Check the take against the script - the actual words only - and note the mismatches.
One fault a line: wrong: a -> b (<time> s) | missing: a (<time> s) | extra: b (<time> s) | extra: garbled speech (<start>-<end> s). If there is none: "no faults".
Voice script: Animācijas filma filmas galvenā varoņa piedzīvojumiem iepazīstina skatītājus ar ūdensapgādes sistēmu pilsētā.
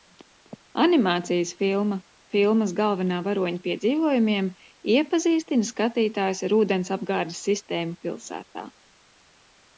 no faults